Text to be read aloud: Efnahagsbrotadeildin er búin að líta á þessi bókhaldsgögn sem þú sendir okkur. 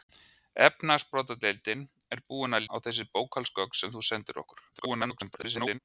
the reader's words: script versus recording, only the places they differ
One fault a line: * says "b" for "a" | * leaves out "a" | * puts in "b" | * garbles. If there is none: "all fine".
* leaves out "líta"
* garbles